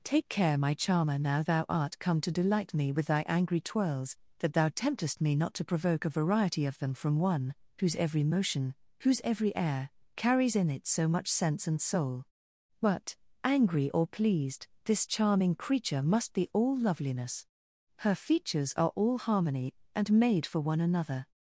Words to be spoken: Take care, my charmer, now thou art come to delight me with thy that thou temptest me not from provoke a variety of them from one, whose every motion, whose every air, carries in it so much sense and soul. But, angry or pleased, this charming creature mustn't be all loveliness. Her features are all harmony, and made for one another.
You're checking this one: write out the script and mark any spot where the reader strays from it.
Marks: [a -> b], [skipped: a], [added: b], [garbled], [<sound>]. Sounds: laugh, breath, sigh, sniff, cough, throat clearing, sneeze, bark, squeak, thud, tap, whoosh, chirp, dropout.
Take care, my charmer, now thou art come to delight me with thy [added: angry twirls] that thou temptest me not [from -> to] provoke a variety of them from one, whose every motion, whose every air, carries in it so much sense and soul. But, angry or pleased, this charming creature [mustn't -> must] be all loveliness. Her features are all harmony, and made for one another.